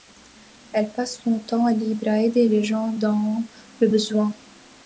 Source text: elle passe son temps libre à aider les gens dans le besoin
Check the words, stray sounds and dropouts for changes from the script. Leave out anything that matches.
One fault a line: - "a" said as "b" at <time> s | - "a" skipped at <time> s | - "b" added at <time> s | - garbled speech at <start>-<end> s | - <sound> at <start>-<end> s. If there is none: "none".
none